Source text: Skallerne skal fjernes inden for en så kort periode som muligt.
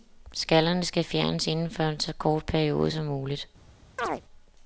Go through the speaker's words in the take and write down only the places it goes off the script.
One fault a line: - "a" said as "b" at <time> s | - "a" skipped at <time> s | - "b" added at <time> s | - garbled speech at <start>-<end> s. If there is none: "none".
none